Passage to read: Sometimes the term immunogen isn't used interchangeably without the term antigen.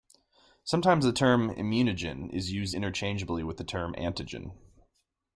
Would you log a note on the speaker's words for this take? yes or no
yes